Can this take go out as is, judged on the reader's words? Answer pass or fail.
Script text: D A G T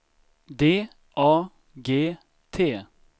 pass